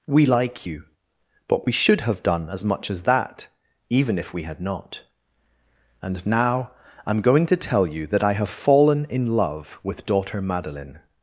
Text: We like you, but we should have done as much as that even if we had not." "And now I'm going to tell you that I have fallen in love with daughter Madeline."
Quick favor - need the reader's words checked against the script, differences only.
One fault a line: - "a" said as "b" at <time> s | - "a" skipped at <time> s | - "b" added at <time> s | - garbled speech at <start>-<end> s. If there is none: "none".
none